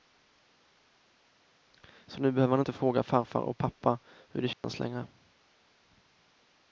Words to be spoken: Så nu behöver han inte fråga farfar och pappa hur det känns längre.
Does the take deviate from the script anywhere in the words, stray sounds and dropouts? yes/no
yes